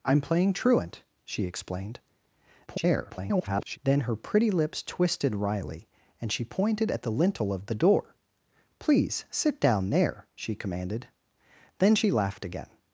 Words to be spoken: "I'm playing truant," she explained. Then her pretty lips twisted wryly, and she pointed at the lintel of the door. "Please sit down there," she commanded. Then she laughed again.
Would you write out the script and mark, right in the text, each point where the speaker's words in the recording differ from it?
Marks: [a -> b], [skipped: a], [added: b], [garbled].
"I'm playing truant," she explained. [garbled] Then her pretty lips twisted wryly, and she pointed at the lintel of the door. "Please sit down there," she commanded. Then she laughed again.